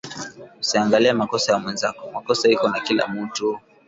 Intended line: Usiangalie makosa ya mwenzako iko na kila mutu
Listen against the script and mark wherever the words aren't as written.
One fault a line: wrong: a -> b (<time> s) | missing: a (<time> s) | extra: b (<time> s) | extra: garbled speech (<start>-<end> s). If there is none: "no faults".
extra: makosa (2.1 s)